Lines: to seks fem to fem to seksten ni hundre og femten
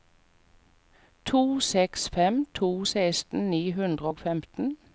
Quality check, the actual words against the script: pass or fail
fail